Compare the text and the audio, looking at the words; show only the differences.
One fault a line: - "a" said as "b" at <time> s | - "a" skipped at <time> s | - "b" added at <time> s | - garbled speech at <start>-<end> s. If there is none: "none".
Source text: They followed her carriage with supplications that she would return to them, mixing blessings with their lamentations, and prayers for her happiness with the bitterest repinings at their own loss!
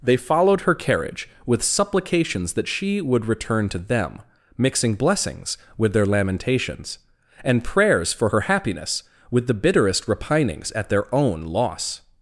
none